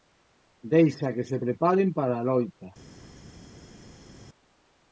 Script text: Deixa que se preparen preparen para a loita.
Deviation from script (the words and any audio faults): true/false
true